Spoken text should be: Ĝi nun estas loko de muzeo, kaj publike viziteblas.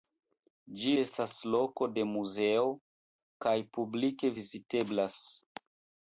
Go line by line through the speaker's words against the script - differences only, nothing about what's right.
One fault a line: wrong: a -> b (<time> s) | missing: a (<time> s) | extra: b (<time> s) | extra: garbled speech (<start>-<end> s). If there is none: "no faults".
missing: nun (0.9 s)